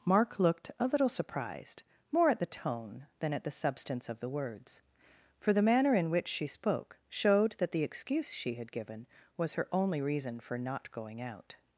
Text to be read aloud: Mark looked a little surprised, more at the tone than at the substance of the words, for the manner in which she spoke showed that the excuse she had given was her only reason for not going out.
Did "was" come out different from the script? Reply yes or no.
no